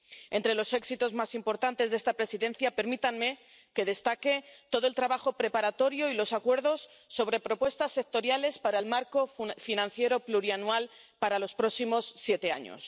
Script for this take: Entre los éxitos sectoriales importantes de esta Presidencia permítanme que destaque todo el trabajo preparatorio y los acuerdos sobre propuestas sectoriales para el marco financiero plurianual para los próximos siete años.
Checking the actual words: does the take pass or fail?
fail